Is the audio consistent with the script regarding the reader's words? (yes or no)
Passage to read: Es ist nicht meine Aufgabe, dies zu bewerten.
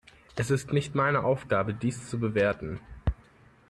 yes